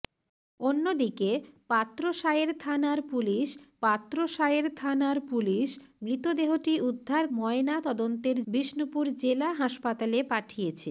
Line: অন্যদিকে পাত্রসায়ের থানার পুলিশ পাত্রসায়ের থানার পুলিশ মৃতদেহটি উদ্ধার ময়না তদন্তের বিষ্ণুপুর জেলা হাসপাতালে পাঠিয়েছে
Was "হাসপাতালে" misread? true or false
false